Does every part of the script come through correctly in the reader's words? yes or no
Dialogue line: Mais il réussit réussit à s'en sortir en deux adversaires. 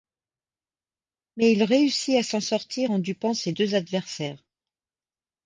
no